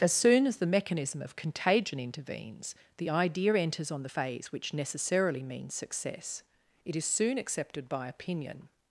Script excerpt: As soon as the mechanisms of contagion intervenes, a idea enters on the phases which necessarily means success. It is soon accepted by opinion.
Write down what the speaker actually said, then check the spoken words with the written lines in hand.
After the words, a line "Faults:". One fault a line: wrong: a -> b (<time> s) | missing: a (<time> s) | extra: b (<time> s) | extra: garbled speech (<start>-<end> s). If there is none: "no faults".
As soon as the mechanism of contagion intervenes, the idea enters on the phase which necessarily means success. It is soon accepted by opinion.
Faults:
wrong: mechanisms -> mechanism (0.7 s)
wrong: a -> the (3.0 s)
wrong: phases -> phase (4.0 s)